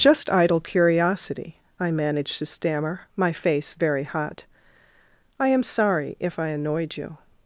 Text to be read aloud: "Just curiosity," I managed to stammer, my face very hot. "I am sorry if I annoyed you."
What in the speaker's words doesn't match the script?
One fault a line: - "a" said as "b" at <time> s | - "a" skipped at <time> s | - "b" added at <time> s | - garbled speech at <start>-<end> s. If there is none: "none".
- "idle" added at 0.3 s